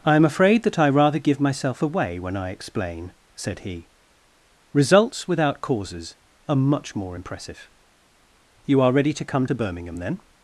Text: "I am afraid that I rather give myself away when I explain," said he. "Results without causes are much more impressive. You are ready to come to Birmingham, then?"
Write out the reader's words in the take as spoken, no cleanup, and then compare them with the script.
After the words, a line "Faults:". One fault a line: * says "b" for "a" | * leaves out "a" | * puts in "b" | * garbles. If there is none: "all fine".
"I am afraid that I rather give myself away when I explain," said he. "Results without causes are much more impressive. You are ready to come to Birmingham, then?"
Faults:
all fine